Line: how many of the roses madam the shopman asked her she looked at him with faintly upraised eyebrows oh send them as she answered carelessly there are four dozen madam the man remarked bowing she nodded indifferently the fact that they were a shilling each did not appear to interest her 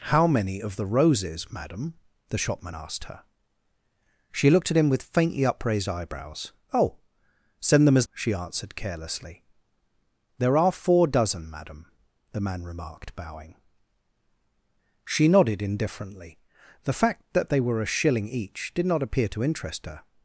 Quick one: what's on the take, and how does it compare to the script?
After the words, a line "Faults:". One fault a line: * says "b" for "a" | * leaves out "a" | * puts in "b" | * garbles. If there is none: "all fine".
how many of the roses madam the shopman asked her she looked at him with faintly upraised eyebrows oh send them as she answered carelessly there are four dozen madam the man remarked bowing she nodded indifferently the fact that they were a shilling each did not appear to interest her
Faults:
all fine